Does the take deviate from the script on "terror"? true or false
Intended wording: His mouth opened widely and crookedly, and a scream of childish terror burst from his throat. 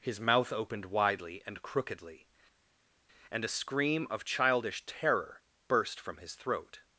false